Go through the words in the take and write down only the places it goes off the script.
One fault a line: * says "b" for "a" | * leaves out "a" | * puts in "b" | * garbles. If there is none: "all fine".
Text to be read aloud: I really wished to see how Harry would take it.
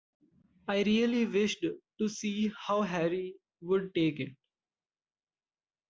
all fine